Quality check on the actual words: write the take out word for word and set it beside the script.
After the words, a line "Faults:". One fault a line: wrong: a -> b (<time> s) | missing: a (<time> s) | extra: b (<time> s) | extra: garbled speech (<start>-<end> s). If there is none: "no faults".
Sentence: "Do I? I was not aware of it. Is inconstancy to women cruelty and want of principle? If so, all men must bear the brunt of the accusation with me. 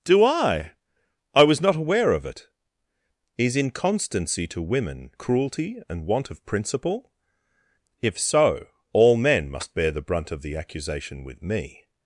"Do I? I was not aware of it. Is inconstancy to women cruelty and want of principle? If so, all men must bear the brunt of the accusation with me.
Faults:
no faults